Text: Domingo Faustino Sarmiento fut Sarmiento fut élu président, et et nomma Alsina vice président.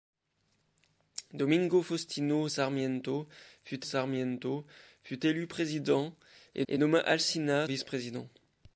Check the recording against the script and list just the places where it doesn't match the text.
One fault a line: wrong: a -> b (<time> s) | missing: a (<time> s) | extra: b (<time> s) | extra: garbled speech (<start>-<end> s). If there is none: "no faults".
no faults